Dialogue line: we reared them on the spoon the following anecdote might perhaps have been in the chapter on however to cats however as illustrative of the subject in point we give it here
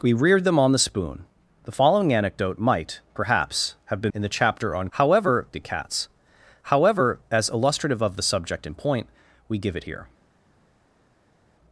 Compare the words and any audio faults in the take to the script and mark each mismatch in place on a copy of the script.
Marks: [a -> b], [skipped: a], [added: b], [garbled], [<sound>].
we reared them on the spoon the following anecdote might perhaps have been in the chapter on however to cats however as illustrative of the subject in point we give it here